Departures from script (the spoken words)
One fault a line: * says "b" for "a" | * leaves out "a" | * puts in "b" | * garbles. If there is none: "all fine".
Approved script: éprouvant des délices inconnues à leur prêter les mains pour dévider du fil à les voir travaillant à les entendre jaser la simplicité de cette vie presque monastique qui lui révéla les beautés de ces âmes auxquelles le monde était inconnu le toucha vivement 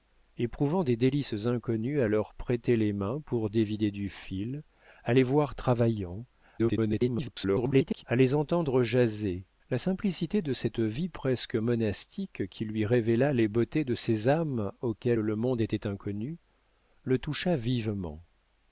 * garbles